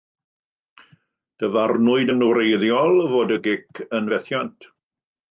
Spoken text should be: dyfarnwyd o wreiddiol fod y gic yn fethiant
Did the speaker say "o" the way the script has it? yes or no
no